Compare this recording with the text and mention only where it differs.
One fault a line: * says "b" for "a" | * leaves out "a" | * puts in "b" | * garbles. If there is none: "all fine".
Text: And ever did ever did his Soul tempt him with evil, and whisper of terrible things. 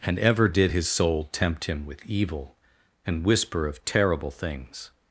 * leaves out "ever did"